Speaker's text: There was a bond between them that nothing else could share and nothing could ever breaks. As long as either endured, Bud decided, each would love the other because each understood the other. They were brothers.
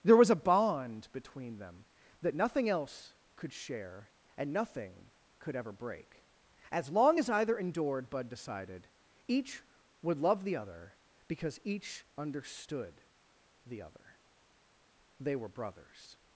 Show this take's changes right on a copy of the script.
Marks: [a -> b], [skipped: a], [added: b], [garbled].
There was a bond between them that nothing else could share and nothing could ever [breaks. -> break] As long as either endured, Bud decided, each would love the other because each understood the other. They were brothers.